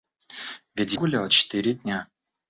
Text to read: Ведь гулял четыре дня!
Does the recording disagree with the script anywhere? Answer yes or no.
no